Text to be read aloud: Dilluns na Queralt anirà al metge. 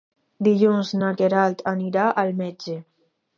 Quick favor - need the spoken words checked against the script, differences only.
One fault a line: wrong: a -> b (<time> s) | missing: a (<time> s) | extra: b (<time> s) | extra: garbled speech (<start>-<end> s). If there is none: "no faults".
no faults